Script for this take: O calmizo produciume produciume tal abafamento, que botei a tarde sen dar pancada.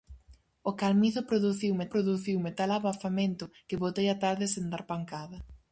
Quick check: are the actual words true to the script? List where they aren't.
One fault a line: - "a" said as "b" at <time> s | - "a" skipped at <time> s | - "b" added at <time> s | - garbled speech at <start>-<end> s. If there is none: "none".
none